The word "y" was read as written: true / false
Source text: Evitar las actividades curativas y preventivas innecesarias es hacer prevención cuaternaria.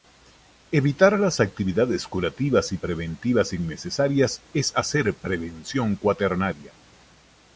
true